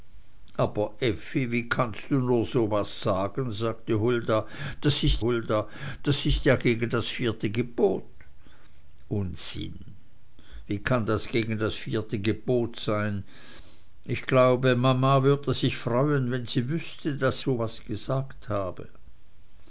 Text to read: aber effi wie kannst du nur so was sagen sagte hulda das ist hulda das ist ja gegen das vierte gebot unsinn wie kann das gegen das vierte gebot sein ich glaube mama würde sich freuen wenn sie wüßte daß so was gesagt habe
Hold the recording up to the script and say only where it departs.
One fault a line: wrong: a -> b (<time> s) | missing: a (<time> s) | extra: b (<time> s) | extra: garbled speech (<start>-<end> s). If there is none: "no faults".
no faults